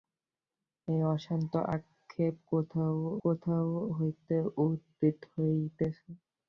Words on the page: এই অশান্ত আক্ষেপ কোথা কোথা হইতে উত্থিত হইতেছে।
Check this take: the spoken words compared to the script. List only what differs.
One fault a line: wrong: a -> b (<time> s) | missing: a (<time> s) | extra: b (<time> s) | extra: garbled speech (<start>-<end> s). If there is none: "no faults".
no faults